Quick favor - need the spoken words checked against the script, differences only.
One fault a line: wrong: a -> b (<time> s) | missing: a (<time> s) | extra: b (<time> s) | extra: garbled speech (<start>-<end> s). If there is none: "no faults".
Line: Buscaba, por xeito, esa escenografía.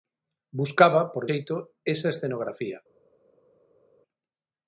no faults